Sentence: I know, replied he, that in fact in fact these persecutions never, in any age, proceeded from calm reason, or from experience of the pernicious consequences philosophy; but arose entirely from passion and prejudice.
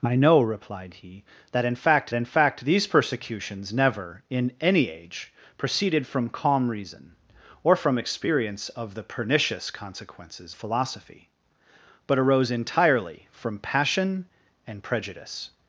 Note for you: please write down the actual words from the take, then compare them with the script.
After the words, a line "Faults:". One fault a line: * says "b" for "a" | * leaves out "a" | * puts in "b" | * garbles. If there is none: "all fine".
I know, replied he, that in fact in fact these persecutions never, in any age, proceeded from calm reason, or from experience of the pernicious consequences philosophy; but arose entirely from passion and prejudice.
Faults:
all fine